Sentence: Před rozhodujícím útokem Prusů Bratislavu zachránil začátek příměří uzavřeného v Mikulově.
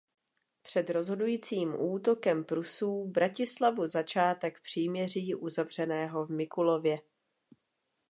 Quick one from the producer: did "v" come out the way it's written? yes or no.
yes